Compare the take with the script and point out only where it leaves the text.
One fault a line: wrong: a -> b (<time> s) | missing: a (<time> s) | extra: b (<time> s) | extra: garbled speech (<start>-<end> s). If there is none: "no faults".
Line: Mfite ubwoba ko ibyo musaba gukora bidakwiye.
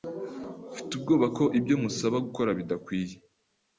no faults